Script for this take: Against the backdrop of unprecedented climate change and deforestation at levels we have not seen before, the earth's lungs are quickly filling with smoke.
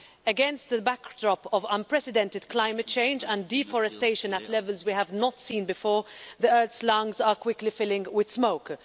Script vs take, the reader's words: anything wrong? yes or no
no